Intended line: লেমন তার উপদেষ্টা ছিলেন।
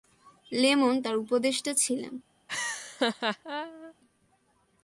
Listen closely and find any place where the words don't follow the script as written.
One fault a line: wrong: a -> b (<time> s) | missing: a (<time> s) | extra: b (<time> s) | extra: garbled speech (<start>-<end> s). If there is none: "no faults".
no faults